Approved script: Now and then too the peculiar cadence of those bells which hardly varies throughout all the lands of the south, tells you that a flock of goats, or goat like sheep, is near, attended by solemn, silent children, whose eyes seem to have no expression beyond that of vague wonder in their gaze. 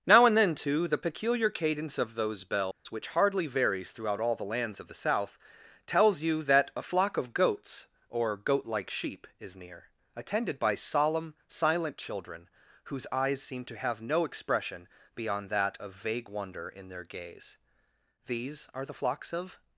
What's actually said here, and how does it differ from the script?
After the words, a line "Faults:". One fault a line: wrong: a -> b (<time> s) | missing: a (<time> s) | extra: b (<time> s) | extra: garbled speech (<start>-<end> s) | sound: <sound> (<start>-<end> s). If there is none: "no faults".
Now and then too the peculiar cadence of those bells which hardly varies throughout all the lands of the south, tells you that a flock of goats, or goat like sheep, is near, attended by solemn, silent children, whose eyes seem to have no expression beyond that of vague wonder in their gaze. These are the flocks of
Faults:
sound: dropout (2.7-2.9 s)
extra: These are the flocks of (18.3 s)